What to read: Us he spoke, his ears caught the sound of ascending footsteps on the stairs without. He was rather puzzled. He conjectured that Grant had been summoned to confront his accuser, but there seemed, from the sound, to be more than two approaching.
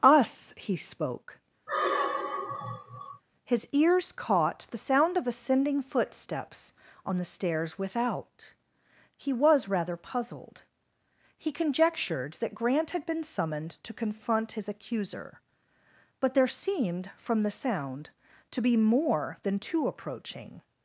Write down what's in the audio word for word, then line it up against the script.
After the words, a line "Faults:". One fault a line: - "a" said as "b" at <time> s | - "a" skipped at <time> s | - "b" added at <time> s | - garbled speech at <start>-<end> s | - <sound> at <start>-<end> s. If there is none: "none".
Us he spoke, his ears caught the sound of ascending footsteps on the stairs without. He was rather puzzled. He conjectured that Grant had been summoned to confront his accuser, but there seemed, from the sound, to be more than two approaching.
Faults:
- sigh at 1.7-3.2 s